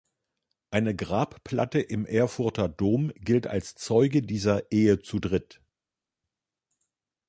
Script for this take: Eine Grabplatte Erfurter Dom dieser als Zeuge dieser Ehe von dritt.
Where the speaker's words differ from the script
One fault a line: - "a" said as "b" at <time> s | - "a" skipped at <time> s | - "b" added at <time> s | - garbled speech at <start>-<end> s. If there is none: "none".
- "im" added at 1.8 s
- "dieser" said as "gilt" at 3.2 s
- "von" said as "zu" at 5.0 s